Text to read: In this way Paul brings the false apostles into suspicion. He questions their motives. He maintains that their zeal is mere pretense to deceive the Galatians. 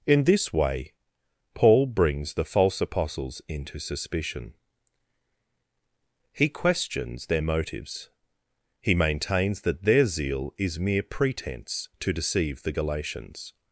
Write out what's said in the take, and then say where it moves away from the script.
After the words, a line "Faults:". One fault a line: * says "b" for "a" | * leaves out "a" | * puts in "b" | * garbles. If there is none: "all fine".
In this way Paul brings the false apostles into suspicion. He questions their motives. He maintains that their zeal is mere pretense to deceive the Galatians.
Faults:
all fine